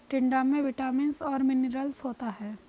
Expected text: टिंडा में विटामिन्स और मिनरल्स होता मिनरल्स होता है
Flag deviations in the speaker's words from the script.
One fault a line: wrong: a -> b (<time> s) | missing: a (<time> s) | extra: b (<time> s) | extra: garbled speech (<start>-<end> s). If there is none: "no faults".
missing: मिनरल्स होता (2.3 s)